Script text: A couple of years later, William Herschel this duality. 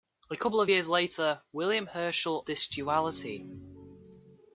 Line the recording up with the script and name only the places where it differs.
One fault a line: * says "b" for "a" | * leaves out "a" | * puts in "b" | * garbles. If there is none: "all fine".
all fine